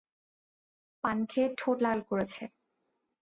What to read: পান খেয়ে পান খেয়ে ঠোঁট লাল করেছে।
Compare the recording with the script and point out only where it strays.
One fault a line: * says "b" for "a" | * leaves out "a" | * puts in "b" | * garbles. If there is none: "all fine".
* leaves out "পান খেয়ে"